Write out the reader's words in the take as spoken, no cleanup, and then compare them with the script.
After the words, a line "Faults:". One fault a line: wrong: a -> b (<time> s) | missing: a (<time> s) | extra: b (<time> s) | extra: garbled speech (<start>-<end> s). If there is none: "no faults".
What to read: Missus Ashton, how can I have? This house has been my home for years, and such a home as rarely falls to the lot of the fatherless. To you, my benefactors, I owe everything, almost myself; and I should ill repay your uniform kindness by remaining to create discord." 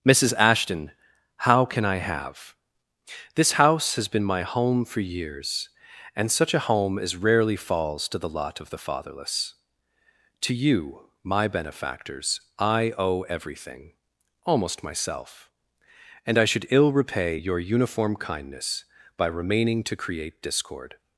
Missus Ashton, how can I have? This house has been my home for years, and such a home as rarely falls to the lot of the fatherless. To you, my benefactors, I owe everything, almost myself; and I should ill repay your uniform kindness by remaining to create discord."
Faults:
no faults